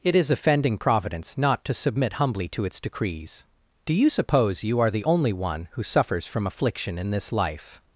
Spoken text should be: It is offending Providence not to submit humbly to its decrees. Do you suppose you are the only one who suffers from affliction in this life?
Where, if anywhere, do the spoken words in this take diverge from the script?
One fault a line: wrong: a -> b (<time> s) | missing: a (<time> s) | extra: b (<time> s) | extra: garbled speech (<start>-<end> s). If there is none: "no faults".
no faults